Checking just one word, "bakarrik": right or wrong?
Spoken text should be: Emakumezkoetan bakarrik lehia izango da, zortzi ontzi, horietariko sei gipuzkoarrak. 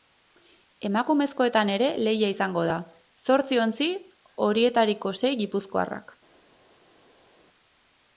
wrong